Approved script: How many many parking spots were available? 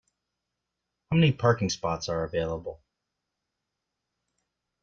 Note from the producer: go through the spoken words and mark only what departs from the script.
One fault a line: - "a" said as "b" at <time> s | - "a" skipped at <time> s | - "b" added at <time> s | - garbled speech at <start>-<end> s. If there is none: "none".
- "many" skipped at 1.3 s
- "were" said as "are" at 2.1 s